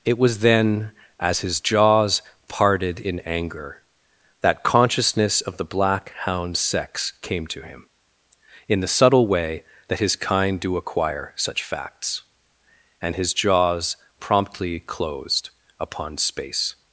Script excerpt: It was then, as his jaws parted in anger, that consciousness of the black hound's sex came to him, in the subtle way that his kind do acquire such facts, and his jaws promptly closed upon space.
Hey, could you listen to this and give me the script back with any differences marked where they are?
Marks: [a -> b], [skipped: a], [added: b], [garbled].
It was then, as his jaws parted in anger, that consciousness of the black hound's sex came to him, in the subtle way that his kind do acquire such facts, and his jaws promptly closed upon space.